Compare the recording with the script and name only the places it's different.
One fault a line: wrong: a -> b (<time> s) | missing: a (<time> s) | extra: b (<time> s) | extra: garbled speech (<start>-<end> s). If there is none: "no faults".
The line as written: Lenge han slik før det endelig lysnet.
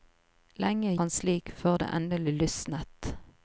no faults